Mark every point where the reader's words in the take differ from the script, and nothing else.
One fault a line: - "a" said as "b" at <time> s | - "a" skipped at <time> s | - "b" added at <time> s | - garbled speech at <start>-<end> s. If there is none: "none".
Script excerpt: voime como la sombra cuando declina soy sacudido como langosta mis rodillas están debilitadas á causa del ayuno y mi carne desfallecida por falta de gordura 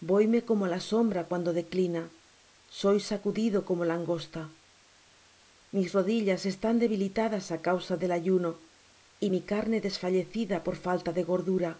none